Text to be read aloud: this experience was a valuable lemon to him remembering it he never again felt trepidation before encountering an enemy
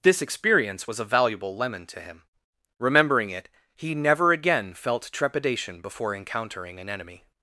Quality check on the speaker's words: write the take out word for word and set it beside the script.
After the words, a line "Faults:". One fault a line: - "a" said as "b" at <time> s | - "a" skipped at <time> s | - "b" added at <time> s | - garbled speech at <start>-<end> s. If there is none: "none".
this experience was a valuable lemon to him remembering it he never again felt trepidation before encountering an enemy
Faults:
none